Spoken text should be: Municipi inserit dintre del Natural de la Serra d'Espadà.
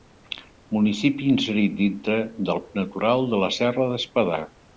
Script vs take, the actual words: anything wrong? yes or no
no